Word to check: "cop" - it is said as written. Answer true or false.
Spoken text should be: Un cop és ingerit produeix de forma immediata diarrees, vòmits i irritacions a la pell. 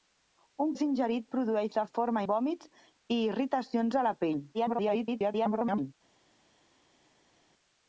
false